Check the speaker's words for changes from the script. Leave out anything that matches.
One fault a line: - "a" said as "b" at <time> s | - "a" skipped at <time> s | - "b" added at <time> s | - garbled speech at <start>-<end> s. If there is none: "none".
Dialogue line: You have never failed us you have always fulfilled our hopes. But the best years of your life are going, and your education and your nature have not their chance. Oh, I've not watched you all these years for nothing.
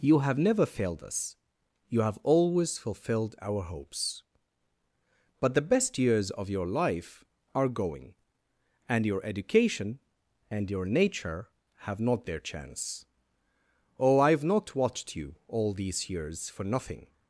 none